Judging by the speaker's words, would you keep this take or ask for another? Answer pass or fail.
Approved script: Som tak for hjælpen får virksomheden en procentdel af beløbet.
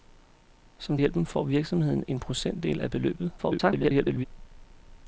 fail